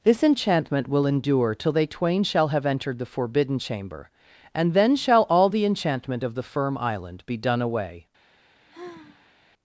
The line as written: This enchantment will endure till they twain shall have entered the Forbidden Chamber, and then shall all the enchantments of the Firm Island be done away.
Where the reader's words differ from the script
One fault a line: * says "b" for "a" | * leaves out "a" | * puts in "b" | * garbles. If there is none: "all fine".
* says "enchantment" for "enchantments"